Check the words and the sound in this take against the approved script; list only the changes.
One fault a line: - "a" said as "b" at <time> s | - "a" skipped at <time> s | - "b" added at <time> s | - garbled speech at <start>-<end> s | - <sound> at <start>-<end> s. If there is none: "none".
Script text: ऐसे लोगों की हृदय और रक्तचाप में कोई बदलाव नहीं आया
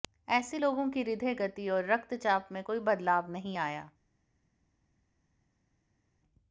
- "गति" added at 1.3 s